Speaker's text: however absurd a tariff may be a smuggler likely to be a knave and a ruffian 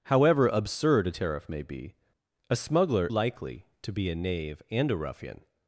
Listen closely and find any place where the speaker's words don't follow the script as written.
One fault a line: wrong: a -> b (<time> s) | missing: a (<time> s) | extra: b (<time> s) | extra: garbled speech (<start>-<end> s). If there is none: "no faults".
no faults